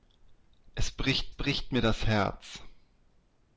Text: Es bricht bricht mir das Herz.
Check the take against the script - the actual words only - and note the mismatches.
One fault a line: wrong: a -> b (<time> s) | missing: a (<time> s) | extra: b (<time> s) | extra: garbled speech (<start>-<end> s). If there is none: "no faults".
no faults